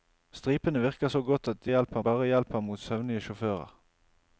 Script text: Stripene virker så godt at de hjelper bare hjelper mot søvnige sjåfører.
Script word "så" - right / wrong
right